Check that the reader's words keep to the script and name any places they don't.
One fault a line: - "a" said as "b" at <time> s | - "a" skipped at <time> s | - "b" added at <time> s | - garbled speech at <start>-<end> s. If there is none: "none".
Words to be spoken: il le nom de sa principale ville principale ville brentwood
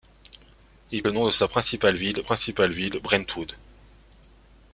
none